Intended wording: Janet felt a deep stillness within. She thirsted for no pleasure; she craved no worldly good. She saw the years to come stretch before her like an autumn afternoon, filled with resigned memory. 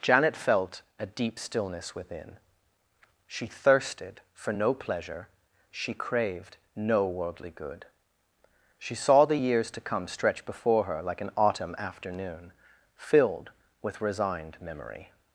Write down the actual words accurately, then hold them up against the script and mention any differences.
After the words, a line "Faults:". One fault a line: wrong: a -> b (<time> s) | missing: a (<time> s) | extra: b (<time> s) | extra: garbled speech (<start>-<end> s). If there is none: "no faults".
Janet felt a deep stillness within. She thirsted for no pleasure; she craved no worldly good. She saw the years to come stretch before her like an autumn afternoon, filled with resigned memory.
Faults:
no faults